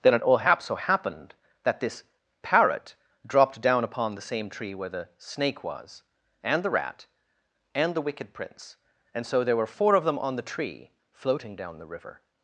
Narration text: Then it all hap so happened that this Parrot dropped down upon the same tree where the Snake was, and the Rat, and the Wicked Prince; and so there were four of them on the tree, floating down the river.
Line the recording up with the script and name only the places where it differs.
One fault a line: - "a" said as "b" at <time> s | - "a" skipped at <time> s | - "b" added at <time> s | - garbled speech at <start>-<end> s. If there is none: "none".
none